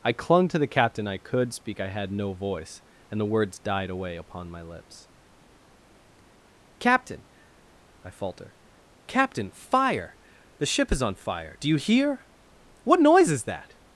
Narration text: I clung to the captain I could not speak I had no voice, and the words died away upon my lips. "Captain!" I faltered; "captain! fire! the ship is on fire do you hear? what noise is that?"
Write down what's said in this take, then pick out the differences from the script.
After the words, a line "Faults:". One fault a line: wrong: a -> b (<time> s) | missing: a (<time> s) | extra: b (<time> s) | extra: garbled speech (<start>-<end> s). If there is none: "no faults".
I clung to the captain I could speak I had no voice, and the words died away upon my lips. "Captain!" I falter; "captain! fire! the ship is on fire do you hear? what noise is that?"
Faults:
missing: not (1.5 s)
wrong: faltered -> falter (8.1 s)